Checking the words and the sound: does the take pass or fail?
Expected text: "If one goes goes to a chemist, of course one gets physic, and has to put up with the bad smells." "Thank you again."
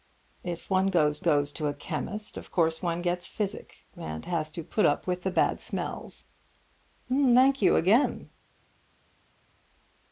pass